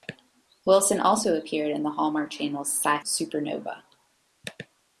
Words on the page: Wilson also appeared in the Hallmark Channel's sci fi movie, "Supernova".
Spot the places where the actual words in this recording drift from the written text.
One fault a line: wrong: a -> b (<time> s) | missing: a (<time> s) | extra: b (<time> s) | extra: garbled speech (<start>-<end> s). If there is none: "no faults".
missing: fi movie (3.0 s)